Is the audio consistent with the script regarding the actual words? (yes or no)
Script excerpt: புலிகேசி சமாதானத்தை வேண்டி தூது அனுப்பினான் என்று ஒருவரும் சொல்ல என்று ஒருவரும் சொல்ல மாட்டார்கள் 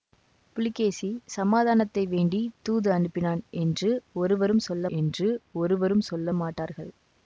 yes